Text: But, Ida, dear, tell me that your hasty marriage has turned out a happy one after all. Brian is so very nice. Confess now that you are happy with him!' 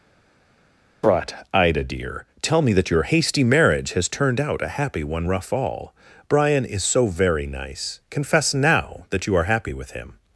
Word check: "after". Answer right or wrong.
wrong